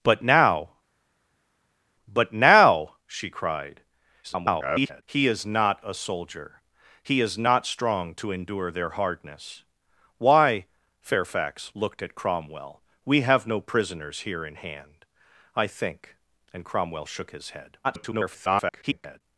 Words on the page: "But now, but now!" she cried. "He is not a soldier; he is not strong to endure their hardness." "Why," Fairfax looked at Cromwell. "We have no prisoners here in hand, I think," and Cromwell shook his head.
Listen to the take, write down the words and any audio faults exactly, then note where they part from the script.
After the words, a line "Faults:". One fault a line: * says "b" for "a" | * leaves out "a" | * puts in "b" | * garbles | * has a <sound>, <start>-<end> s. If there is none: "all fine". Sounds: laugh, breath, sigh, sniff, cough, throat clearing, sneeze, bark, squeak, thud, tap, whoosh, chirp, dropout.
"But now, but now!" she cried. [garbled] "He is not a soldier; he is not strong to endure their hardness." "Why," Fairfax looked at Cromwell. "We have no prisoners here in hand, I think," and Cromwell shook his head. [garbled]
Faults:
* garbles
* garbles